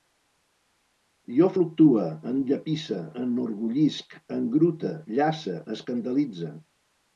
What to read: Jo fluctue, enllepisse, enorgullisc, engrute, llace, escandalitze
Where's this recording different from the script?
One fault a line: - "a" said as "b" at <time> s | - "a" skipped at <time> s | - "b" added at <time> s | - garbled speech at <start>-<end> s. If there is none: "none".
none